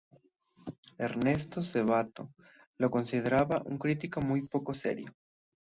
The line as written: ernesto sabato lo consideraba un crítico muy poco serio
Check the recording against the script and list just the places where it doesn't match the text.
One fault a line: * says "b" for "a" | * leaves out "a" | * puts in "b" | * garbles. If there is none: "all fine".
all fine